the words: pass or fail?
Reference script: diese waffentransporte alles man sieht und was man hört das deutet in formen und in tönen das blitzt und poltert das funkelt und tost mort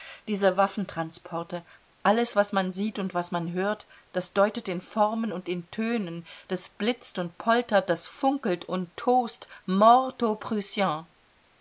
fail